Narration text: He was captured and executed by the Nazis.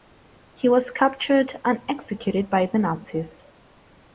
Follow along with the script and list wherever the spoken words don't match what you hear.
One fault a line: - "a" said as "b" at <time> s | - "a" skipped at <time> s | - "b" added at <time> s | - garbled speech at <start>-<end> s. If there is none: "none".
none